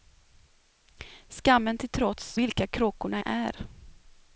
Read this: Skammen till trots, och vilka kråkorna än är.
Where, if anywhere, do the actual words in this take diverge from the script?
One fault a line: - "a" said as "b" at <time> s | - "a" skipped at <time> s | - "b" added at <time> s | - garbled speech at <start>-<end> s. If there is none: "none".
- "och" skipped at 2.4 s
- "än" skipped at 3.2 s